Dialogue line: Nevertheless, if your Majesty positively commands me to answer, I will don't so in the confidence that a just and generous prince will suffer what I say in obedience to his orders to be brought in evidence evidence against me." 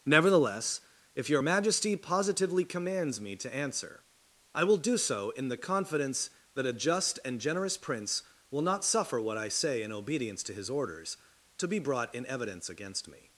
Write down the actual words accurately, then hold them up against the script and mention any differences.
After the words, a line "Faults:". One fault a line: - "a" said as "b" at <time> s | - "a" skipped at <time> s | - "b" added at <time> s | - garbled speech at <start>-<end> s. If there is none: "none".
Nevertheless, if your Majesty positively commands me to answer, I will do so in the confidence that a just and generous prince will not suffer what I say in obedience to his orders to be brought in evidence against me."
Faults:
- "don't" said as "do" at 4.8 s
- "not" added at 8.6 s
- "evidence" skipped at 12.7 s